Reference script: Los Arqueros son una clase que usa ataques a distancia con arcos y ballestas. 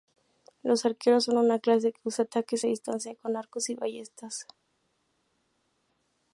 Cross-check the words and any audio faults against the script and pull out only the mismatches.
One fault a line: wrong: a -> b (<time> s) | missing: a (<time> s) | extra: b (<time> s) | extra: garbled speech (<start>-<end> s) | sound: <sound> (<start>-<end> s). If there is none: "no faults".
no faults